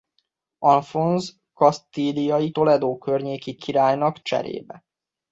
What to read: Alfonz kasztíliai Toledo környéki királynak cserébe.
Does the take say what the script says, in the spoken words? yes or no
yes